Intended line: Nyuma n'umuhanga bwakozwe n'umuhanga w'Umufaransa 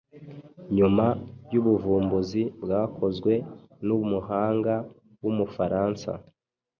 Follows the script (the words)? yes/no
no